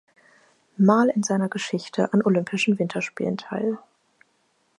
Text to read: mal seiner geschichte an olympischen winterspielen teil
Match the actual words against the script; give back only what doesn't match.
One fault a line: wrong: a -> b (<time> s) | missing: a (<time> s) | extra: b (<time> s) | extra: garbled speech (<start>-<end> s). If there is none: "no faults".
extra: in (1.1 s)